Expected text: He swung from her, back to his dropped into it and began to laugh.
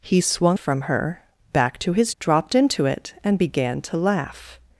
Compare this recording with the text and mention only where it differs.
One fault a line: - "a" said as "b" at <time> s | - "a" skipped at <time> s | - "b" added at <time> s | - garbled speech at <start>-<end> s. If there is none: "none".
none